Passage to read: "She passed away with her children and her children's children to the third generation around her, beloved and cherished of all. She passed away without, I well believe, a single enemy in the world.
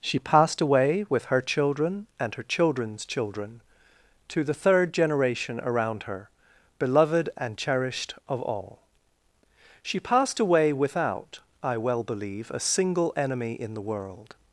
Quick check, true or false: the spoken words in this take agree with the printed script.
true